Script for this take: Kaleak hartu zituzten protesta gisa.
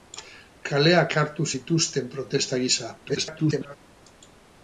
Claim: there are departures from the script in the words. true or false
true